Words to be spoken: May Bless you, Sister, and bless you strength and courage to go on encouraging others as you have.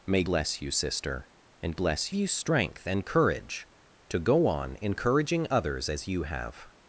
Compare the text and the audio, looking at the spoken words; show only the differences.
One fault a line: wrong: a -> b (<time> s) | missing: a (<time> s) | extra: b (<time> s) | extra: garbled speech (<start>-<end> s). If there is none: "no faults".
no faults